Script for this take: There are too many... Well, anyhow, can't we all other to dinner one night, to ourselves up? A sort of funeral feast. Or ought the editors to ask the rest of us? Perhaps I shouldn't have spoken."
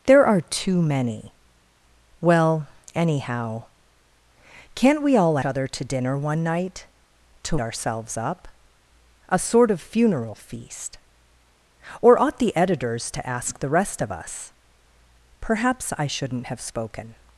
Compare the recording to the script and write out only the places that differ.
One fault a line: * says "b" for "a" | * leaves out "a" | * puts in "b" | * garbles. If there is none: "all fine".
all fine